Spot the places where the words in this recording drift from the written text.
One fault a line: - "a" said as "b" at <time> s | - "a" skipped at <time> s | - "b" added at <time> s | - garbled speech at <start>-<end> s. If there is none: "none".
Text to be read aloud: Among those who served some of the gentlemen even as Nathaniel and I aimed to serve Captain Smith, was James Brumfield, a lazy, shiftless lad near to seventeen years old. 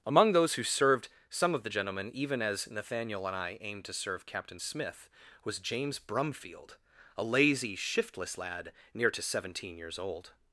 none